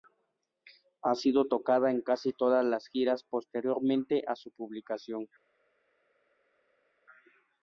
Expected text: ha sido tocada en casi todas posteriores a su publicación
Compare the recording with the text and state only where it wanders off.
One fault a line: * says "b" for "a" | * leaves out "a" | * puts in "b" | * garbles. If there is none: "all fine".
* puts in "las giras"